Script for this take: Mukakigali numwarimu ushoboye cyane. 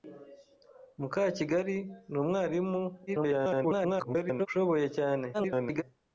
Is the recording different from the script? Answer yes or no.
yes